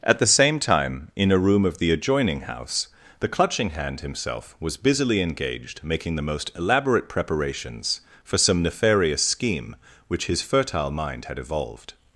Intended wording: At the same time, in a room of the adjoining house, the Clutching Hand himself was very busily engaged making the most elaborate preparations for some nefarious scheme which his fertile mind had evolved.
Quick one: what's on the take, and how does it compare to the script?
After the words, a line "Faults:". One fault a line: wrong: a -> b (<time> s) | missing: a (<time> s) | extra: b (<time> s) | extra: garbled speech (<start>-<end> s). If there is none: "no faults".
At the same time, in a room of the adjoining house, the Clutching Hand himself was busily engaged making the most elaborate preparations for some nefarious scheme which his fertile mind had evolved.
Faults:
missing: very (4.8 s)